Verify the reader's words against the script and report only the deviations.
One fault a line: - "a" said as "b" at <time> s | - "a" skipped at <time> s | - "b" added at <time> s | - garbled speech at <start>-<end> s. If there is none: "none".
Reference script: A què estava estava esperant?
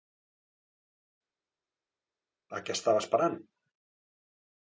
- "estava" skipped at 3.1 s